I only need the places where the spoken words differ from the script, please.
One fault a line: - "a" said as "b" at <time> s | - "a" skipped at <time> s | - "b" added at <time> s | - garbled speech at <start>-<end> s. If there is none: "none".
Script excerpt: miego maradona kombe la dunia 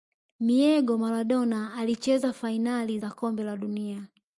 - "alicheza fainali za" added at 1.7 s